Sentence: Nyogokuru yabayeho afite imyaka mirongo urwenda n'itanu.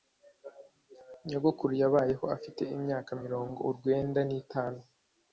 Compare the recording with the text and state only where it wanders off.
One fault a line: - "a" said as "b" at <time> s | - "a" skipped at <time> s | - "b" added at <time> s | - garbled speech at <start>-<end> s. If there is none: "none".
none